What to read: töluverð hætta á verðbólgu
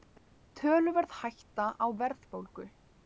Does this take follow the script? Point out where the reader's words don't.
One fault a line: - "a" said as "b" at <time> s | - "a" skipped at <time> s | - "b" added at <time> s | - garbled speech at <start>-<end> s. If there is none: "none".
none